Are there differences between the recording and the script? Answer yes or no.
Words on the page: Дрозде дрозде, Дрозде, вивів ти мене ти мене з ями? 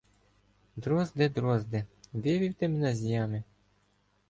yes